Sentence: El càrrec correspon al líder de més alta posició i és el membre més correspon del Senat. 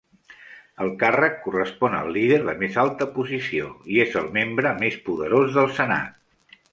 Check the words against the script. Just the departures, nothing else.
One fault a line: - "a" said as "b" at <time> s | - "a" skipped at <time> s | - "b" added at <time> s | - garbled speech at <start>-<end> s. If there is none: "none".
- "correspon" said as "poderós" at 5.1 s